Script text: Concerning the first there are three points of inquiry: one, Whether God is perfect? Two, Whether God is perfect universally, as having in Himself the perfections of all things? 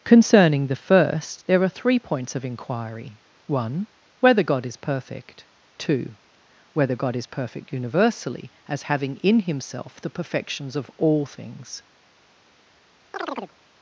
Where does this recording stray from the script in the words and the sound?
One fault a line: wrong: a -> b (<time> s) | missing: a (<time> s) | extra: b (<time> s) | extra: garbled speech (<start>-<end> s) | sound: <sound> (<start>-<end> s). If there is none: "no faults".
sound: chirp (13.1-13.5 s)